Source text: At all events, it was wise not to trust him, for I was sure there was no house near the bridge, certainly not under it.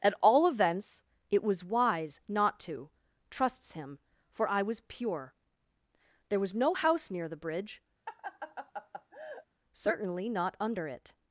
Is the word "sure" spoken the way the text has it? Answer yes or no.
no